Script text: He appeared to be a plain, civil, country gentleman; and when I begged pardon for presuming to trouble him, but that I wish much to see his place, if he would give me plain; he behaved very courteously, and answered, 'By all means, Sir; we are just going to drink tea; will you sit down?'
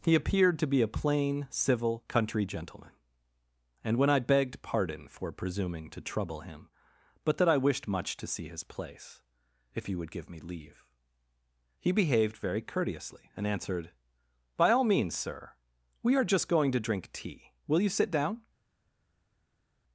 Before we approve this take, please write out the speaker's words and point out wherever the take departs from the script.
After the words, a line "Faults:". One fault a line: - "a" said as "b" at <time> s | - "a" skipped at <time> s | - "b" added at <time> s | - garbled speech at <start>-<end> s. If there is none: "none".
He appeared to be a plain, civil, country gentleman; and when I begged pardon for presuming to trouble him, but that I wished much to see his place, if he would give me leave; he behaved very courteously, and answered, 'By all means, Sir; we are just going to drink tea; will you sit down?'
Faults:
- "wish" said as "wished" at 7.6 s
- "plain" said as "leave" at 10.4 s